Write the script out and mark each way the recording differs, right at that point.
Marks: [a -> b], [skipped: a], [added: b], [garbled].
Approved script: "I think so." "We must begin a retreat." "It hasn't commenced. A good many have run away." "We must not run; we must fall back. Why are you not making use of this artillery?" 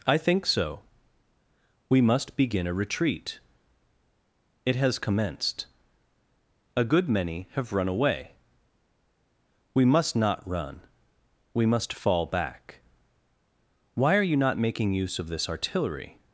"I think so." "We must begin a retreat." "It [hasn't -> has] commenced. A good many have run away." "We must not run; we must fall back. Why are you not making use of this artillery?"